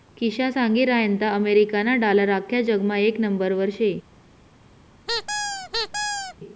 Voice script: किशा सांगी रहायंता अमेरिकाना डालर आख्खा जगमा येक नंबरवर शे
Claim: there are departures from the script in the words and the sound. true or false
true